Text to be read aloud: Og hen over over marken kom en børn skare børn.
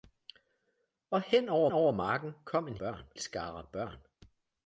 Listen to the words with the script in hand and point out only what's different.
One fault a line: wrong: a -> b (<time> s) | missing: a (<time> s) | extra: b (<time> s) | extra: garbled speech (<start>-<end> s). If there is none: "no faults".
no faults